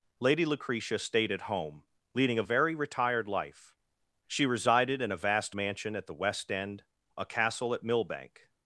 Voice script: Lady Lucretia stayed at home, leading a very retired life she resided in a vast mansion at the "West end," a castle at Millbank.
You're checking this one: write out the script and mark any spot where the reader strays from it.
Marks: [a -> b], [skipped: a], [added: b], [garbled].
Lady Lucretia stayed at home, leading a very retired life she resided in a vast mansion at the "West end," a castle at Millbank.